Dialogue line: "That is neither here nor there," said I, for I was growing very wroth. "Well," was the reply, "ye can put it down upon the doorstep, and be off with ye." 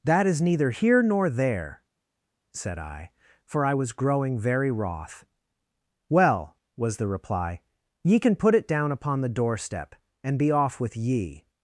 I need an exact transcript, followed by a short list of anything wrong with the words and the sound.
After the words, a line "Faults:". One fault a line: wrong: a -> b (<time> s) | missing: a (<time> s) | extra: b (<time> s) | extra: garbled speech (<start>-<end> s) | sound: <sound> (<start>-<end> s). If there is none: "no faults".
"That is neither here nor there," said I, for I was growing very wroth. "Well," was the reply, "ye can put it down upon the doorstep, and be off with ye."
Faults:
no faults